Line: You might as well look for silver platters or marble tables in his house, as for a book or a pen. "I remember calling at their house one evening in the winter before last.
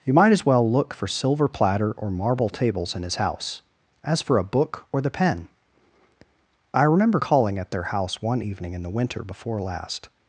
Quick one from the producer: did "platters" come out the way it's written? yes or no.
no